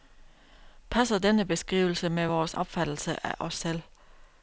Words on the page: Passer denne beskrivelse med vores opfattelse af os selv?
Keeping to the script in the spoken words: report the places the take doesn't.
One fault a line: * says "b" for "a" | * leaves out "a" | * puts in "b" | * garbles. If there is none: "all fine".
all fine